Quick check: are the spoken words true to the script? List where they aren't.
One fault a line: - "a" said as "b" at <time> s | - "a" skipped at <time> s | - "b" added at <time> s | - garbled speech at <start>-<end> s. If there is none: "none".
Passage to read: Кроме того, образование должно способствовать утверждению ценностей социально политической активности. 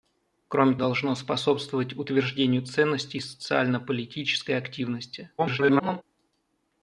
- "того образование" skipped at 0.8 s
- garbled speech at 5.4-6.0 s